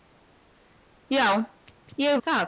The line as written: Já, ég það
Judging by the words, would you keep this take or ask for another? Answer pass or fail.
pass